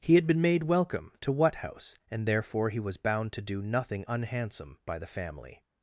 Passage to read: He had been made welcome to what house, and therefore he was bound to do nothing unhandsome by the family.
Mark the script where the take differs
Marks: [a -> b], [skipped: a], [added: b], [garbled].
He had been made welcome to what house, and therefore he was bound to do nothing unhandsome by the family.